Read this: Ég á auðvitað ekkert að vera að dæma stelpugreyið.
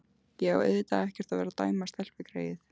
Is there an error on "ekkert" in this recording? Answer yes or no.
no